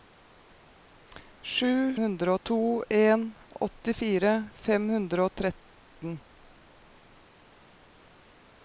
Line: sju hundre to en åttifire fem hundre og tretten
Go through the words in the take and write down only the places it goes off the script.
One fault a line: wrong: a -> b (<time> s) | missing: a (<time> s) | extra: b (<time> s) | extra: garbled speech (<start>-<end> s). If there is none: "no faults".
no faults